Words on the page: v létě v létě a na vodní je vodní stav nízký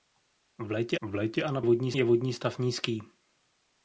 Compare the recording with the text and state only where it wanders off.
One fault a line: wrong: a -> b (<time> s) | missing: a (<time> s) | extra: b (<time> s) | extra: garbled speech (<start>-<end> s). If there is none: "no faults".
no faults